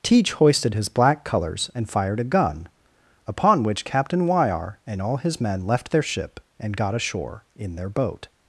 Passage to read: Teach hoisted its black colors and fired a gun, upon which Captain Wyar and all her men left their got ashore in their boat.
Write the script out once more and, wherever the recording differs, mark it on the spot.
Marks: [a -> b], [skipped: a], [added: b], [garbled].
Teach hoisted [its -> his] black colors and fired a gun, upon which Captain Wyar and all [her -> his] men left their [added: ship and] got ashore in their boat.